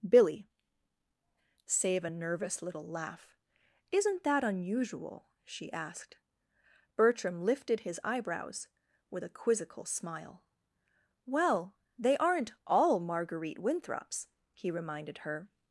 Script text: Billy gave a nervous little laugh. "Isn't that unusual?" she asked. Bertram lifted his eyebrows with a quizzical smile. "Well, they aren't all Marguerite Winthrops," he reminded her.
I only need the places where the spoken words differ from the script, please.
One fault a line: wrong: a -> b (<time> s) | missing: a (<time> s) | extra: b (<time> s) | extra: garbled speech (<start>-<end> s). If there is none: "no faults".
wrong: gave -> save (1.6 s)